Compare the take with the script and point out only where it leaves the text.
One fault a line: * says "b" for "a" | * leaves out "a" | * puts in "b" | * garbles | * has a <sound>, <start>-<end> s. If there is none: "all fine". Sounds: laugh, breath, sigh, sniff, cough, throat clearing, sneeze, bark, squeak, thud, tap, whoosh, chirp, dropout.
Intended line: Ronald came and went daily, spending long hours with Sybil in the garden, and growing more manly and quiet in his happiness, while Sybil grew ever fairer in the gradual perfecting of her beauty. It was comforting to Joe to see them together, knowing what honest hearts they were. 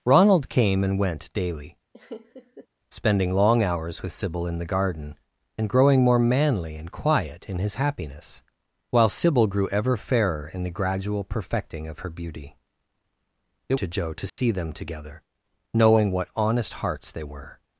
* has a laugh, 1.9-2.7 s
* leaves out "was comforting"
* has a dropout, 14.3-14.4 s